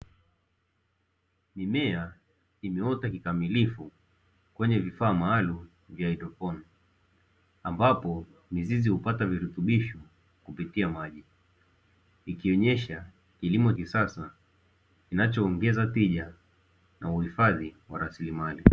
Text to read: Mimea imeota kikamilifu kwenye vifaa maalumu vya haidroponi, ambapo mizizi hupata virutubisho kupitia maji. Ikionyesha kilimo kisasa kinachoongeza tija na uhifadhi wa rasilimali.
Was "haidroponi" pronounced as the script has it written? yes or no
yes